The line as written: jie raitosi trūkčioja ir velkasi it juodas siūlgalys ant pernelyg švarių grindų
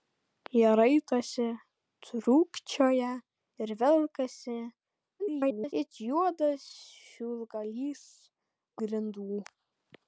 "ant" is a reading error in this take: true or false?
true